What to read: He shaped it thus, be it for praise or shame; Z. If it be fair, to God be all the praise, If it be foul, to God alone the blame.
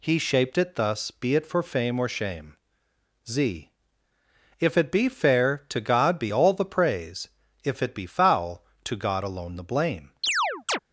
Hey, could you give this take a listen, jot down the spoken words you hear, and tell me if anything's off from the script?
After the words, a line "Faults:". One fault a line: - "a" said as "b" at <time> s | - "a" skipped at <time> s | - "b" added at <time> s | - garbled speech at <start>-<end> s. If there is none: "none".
He shaped it thus, be it for fame or shame; Z. If it be fair, to God be all the praise, If it be foul, to God alone the blame.
Faults:
- "praise" said as "fame" at 1.6 s